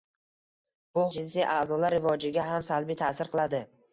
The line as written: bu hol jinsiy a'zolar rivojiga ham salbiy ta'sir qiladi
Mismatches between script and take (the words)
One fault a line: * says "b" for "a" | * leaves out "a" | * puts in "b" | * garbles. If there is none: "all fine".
* leaves out "hol"